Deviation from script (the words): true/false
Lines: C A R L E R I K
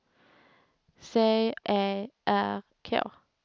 true